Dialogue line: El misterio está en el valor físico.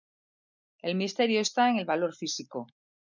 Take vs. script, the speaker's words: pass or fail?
pass